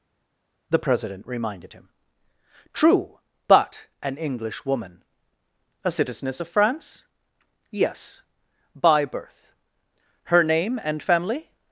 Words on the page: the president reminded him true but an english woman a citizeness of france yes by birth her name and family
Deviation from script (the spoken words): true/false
false